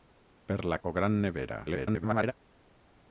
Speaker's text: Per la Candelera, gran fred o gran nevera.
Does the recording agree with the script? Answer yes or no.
no